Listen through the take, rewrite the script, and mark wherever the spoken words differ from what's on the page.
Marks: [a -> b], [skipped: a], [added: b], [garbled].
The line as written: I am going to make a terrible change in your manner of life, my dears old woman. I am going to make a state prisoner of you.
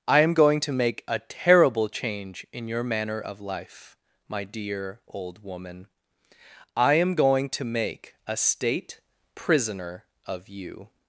I am going to make a terrible change in your manner of life, my [dears -> dear] old woman. I am going to make a state prisoner of you.